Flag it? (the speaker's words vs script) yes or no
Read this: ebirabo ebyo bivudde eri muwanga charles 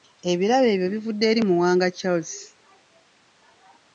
no